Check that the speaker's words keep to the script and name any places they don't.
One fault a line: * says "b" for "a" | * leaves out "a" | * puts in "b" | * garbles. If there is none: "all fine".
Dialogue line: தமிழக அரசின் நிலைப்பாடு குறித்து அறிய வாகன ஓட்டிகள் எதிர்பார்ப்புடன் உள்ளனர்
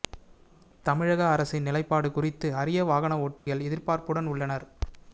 all fine